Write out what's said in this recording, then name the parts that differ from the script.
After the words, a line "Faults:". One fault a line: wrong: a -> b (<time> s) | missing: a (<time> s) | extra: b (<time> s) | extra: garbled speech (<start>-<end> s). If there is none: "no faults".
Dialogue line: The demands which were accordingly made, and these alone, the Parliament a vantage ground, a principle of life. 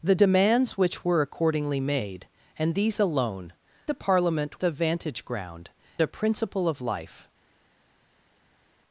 The demands which were accordingly made, and these alone, the Parliament a vantage ground, a principle of life.
Faults:
no faults